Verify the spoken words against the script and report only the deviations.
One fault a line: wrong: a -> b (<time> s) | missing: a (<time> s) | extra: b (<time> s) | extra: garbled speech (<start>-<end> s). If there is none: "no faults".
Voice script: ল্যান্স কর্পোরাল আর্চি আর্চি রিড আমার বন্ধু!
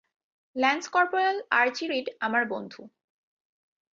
missing: আর্চি (1.9 s)